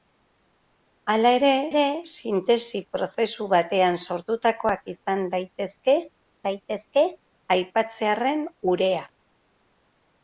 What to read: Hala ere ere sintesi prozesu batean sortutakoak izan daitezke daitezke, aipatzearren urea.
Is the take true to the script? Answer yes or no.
yes